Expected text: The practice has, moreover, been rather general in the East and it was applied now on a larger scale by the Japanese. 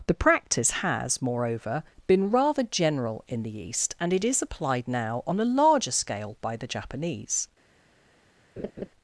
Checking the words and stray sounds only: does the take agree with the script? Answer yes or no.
no